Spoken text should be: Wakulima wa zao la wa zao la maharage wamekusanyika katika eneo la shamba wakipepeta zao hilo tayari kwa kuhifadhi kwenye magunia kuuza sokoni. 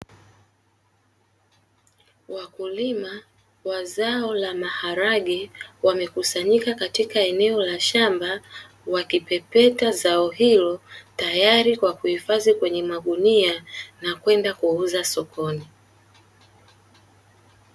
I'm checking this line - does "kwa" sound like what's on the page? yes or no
yes